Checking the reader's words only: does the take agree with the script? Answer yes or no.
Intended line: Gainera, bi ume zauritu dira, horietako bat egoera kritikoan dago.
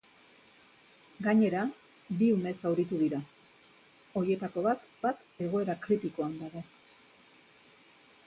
no